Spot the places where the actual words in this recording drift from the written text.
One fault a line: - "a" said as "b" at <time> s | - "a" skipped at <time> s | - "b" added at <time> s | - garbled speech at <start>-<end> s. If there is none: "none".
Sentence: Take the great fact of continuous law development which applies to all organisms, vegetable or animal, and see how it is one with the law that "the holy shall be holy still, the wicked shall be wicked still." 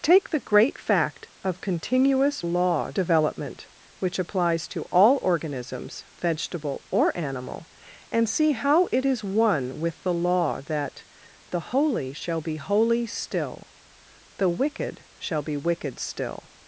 none